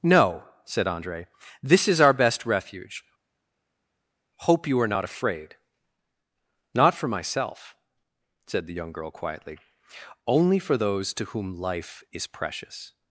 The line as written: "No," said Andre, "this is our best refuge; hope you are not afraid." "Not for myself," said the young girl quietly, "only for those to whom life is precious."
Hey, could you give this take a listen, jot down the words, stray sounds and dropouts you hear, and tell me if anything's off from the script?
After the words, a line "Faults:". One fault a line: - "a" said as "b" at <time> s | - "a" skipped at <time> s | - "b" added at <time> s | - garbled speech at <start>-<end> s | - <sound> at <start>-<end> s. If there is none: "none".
"No," said Andre, "this is our best refuge; hope you are not afraid." "Not for myself," said the young girl quietly, "only for those to whom life is precious."
Faults:
none